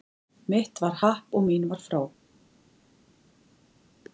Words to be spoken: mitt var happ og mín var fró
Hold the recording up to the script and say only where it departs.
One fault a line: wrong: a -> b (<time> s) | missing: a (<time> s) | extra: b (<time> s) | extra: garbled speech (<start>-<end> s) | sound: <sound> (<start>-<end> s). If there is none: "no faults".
no faults